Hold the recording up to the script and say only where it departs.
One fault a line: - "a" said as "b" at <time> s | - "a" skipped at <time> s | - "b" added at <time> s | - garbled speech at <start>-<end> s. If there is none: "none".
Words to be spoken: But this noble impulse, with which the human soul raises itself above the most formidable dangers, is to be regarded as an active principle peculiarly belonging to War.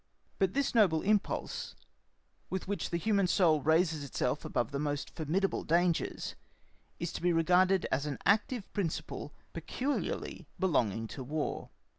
none